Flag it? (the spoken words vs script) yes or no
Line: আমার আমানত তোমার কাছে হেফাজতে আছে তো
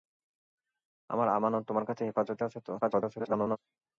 yes